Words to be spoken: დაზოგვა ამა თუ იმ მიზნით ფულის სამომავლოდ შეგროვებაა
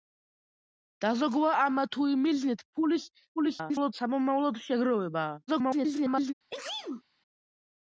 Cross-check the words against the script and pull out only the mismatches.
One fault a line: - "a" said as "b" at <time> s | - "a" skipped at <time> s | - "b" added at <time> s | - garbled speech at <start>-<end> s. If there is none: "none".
- garbled speech at 3.4-3.9 s
- garbled speech at 5.5-6.3 s